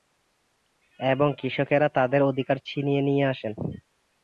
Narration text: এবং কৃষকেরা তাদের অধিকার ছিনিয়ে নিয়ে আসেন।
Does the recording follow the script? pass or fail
pass